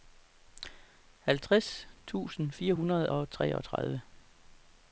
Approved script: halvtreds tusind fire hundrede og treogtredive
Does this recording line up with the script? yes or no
yes